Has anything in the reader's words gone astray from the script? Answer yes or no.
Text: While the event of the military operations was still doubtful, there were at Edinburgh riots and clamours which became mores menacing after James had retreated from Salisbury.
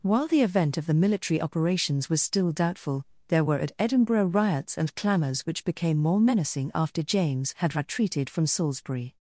yes